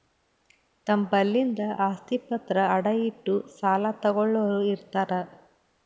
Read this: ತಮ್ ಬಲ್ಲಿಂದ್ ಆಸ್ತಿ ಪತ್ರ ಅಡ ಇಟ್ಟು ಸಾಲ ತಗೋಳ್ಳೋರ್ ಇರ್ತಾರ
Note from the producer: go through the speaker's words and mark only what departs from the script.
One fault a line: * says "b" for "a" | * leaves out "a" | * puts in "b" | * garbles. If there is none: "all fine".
all fine